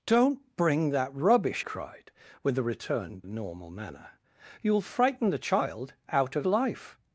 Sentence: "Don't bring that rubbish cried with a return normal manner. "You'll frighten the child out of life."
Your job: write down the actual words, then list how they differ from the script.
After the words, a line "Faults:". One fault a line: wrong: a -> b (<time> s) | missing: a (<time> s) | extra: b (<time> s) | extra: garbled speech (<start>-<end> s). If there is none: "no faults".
"Don't bring that rubbish cried with a return normal manner. "You'll frighten the child out of life."
Faults:
no faults